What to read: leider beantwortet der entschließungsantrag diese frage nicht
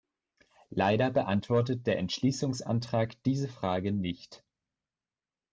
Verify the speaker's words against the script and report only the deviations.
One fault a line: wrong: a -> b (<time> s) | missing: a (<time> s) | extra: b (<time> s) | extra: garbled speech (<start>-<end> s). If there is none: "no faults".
no faults